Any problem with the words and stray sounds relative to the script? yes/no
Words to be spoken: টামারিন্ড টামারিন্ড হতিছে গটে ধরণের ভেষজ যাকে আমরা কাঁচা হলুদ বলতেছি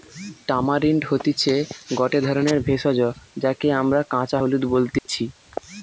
yes